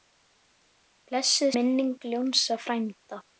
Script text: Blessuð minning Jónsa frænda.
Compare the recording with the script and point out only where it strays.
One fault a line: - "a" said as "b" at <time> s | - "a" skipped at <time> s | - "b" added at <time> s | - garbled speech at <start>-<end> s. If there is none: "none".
none